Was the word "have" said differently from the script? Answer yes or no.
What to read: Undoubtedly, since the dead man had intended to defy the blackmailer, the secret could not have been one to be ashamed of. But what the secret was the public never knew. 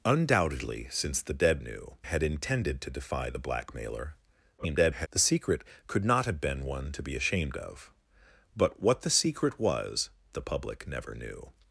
no